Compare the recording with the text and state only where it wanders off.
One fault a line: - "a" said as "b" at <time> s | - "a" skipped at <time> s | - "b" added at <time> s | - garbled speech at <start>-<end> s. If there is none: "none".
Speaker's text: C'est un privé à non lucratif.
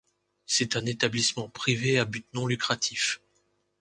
- "établissement" added at 0.9 s
- "but" added at 2.1 s